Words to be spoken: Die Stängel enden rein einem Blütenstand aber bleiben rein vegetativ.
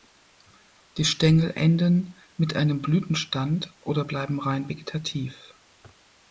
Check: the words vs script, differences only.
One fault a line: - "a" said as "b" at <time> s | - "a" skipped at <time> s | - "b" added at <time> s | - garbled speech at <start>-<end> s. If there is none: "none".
- "rein" said as "mit" at 2.4 s
- "aber" said as "oder" at 3.8 s